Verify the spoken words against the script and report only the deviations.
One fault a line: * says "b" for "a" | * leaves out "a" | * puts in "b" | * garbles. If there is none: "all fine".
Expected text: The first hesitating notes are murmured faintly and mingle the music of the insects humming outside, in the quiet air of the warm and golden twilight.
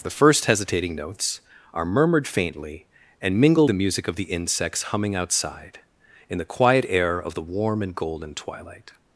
all fine